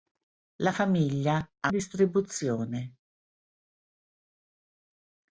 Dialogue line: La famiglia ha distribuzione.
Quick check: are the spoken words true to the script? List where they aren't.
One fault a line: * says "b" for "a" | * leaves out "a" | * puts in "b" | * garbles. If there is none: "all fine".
all fine